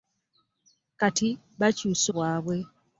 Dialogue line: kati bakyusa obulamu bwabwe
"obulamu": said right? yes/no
no